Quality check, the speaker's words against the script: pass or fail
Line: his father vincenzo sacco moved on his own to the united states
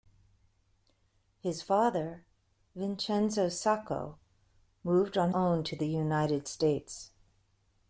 fail